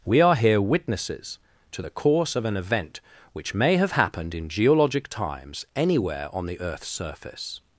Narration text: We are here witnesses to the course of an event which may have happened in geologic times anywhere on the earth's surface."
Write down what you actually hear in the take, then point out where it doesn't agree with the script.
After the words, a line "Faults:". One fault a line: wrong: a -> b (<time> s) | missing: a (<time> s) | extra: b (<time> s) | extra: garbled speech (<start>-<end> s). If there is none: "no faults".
We are here witnesses to the course of an event which may have happened in geologic times anywhere on the earth's surface."
Faults:
no faults